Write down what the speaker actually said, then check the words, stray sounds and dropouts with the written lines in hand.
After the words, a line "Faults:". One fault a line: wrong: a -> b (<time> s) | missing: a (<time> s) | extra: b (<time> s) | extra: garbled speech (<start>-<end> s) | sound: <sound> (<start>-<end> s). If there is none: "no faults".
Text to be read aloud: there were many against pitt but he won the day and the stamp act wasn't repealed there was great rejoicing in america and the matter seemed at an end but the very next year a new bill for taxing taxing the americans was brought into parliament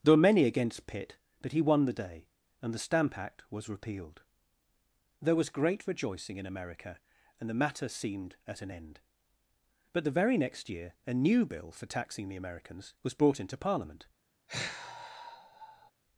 there were many against pitt but he won the day and the stamp act was repealed there was great rejoicing in america and the matter seemed at an end but the very next year a new bill for taxing the americans was brought into parliament
Faults:
wrong: wasn't -> was (3.5 s)
missing: taxing (12.3 s)
sound: sigh (14.5-15.9 s)